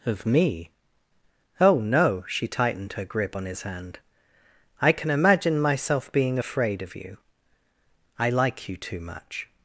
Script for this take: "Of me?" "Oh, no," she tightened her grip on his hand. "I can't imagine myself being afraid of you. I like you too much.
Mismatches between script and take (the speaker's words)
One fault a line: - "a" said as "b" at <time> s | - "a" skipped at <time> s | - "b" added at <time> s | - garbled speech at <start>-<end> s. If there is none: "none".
- "can't" said as "can" at 4.9 s